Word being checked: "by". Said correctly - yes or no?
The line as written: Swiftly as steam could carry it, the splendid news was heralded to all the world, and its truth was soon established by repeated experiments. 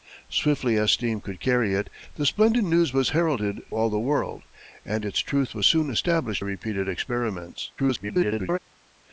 no